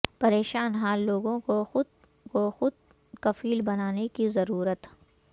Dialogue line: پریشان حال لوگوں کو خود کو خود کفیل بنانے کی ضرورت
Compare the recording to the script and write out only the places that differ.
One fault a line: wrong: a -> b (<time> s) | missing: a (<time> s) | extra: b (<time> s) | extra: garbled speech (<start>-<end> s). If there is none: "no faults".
no faults